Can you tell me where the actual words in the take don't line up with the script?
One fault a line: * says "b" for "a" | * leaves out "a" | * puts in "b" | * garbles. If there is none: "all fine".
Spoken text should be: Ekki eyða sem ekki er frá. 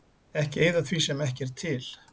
* puts in "því"
* says "til" for "frá"